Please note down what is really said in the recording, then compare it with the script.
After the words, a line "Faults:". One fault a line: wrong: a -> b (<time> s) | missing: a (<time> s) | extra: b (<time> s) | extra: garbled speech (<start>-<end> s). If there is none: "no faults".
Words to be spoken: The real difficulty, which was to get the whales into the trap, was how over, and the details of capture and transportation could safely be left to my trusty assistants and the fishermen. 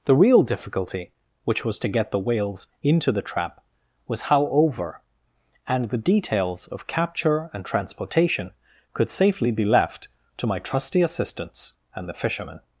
The real difficulty, which was to get the whales into the trap, was how over, and the details of capture and transportation could safely be left to my trusty assistants and the fishermen.
Faults:
no faults